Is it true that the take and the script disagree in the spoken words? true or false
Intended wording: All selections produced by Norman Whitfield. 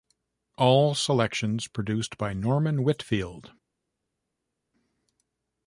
false